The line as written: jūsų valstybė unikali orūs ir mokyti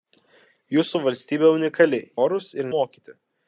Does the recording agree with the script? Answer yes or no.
yes